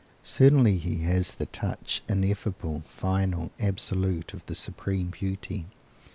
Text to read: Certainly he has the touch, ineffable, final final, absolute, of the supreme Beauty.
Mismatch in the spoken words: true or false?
true